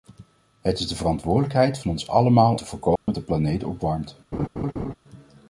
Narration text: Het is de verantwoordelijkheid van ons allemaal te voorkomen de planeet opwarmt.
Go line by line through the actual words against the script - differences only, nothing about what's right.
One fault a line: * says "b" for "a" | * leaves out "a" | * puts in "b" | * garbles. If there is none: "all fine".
all fine